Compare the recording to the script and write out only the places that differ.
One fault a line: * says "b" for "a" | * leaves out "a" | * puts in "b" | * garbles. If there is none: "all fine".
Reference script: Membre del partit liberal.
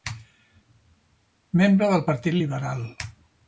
all fine